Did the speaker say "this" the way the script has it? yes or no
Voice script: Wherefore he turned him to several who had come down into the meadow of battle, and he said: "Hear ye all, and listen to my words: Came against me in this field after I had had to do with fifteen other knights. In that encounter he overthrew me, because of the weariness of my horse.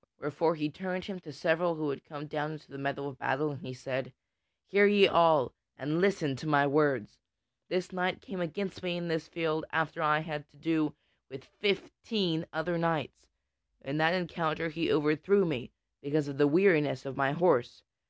yes